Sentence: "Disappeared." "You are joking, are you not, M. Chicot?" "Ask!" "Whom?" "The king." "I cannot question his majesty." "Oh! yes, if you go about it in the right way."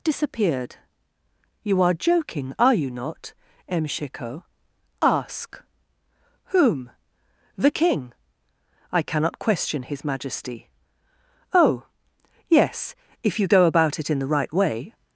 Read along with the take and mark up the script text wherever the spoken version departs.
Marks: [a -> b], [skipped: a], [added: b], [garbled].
"Disappeared." "You are joking, are you not, M. Chicot?" "Ask!" "Whom?" "The king." "I cannot question his majesty." "Oh! yes, if you go about it in the right way."